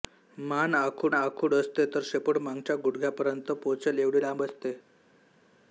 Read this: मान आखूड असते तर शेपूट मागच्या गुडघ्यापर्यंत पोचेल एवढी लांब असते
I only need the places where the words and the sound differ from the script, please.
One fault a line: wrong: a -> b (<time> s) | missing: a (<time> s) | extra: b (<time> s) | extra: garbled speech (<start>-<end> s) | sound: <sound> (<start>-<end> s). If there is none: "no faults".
extra: आखूड (1.1 s)